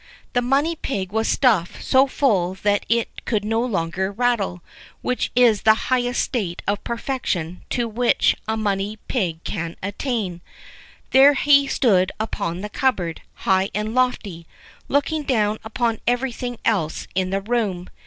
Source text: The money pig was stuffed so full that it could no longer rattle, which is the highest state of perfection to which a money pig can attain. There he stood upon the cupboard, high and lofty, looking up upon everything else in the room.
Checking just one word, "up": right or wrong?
wrong